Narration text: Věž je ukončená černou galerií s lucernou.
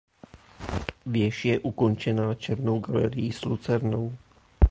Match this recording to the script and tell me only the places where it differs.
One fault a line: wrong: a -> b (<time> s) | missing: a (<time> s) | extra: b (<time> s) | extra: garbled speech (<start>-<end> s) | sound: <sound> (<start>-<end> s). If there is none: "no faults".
no faults